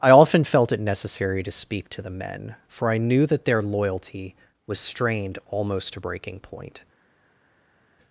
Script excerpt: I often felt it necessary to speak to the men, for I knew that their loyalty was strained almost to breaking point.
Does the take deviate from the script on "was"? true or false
false